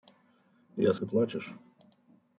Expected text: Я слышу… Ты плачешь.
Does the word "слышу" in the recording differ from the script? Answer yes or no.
yes